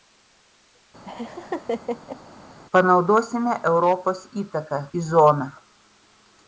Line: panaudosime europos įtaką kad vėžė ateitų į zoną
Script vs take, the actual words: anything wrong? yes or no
yes